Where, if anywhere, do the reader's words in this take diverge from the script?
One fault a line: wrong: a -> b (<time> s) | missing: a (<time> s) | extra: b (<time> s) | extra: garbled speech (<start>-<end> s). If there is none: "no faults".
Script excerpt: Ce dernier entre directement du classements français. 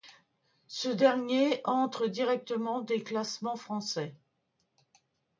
wrong: du -> des (2.8 s)